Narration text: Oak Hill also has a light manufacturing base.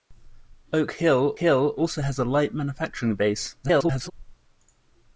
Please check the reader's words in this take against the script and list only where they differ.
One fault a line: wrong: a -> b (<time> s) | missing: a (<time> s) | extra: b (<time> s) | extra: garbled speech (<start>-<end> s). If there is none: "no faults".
extra: Hill (1.3 s)
extra: garbled speech (3.6-4.1 s)